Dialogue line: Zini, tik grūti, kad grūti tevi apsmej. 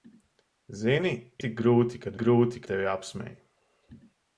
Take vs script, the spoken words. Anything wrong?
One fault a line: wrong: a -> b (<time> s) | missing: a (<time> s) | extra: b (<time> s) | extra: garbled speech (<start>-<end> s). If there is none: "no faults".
no faults